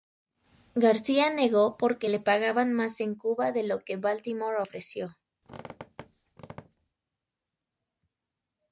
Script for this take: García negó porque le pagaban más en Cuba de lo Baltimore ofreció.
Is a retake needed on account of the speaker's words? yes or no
yes